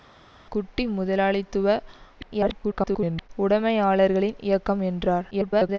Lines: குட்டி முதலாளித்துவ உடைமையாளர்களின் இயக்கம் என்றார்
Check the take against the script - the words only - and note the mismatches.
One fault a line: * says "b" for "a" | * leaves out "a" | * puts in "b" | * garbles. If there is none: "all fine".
* garbles
* garbles